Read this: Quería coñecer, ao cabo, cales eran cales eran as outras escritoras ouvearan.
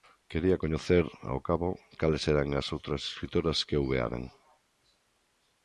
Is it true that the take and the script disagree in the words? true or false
true